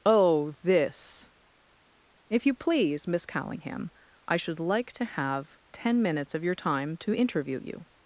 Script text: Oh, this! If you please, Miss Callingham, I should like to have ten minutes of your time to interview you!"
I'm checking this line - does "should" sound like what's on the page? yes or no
yes